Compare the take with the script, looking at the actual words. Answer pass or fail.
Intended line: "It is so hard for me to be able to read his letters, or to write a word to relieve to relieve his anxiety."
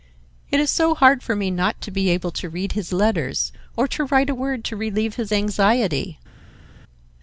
fail